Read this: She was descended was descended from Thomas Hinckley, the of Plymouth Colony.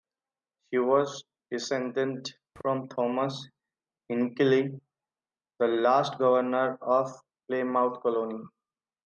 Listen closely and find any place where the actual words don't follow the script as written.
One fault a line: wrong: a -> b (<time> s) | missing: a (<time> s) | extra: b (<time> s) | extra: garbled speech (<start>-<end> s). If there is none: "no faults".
missing: was descended (2.3 s)
extra: last governor (5.7 s)